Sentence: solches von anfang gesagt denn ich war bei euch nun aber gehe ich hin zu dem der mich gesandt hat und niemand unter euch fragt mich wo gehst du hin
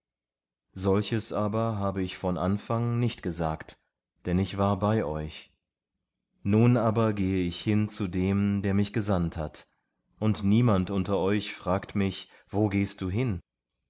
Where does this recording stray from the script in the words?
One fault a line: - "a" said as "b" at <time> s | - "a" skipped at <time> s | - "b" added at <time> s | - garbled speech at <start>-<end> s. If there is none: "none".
- "aber habe ich" added at 1.3 s
- "nicht" added at 3.0 s